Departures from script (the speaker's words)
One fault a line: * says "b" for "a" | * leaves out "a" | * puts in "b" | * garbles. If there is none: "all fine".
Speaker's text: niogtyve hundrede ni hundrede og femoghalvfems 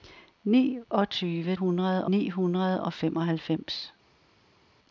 all fine